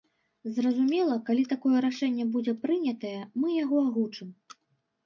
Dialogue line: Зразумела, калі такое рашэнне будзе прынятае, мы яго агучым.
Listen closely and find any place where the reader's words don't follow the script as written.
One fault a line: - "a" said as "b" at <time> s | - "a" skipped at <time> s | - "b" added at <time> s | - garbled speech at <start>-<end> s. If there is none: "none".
none